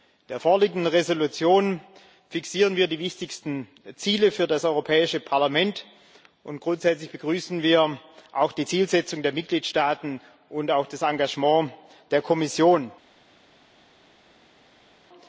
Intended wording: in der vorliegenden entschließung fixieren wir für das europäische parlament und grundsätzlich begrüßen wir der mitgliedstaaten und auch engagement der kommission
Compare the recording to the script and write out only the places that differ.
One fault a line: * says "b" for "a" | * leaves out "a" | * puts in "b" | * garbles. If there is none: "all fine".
* puts in "die wichtigsten ziele"
* puts in "auch die zielsetzung"
* puts in "das"